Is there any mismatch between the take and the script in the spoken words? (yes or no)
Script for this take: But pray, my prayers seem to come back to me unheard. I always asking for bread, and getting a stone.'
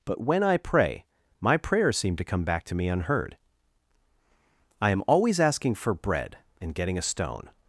yes